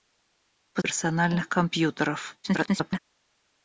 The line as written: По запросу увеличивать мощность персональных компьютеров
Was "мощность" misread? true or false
true